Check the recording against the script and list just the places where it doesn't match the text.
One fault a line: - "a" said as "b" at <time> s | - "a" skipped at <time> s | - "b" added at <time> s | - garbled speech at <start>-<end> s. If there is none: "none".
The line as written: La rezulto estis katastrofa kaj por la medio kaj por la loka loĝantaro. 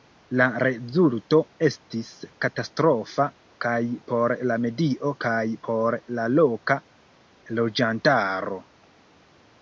none